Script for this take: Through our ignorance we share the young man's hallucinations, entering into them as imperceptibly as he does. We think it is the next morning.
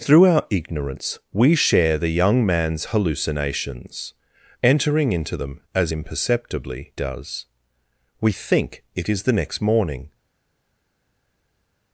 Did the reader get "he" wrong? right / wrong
wrong